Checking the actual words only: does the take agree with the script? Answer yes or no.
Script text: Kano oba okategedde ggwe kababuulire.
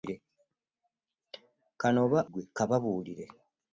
no